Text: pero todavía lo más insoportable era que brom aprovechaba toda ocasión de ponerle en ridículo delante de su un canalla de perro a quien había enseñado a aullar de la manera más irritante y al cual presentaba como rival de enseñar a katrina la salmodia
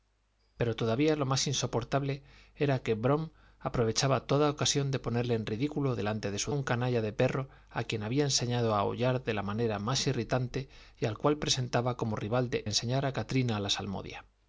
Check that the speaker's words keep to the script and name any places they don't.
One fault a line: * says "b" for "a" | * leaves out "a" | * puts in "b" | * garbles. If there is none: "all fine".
all fine